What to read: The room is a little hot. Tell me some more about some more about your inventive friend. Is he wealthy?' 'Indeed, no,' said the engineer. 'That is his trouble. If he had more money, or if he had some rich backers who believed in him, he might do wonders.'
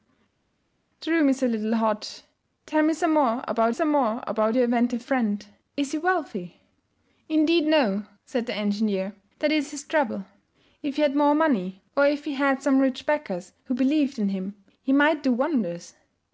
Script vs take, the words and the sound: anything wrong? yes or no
no